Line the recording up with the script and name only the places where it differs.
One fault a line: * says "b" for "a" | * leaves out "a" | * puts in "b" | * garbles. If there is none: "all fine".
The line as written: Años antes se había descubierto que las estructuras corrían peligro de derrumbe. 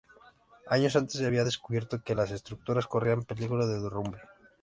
all fine